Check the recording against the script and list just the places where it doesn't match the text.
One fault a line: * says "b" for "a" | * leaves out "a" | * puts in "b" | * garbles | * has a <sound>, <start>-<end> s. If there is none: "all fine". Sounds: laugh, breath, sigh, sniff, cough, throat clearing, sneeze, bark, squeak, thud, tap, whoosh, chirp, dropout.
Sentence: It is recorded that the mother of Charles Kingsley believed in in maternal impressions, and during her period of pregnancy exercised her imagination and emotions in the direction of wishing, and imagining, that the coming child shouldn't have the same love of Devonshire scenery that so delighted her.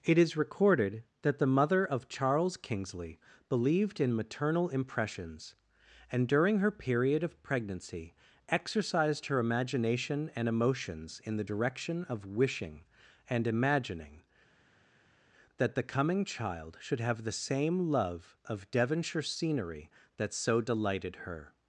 * leaves out "in"
* says "should" for "shouldn't"